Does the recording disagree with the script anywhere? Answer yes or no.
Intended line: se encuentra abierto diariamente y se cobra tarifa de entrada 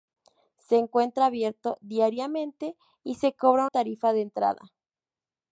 no